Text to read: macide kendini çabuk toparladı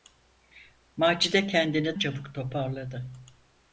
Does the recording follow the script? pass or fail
pass